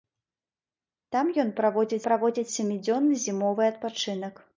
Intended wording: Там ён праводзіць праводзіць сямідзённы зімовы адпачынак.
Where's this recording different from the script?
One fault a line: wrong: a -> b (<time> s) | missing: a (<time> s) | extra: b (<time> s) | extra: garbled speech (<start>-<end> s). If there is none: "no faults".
no faults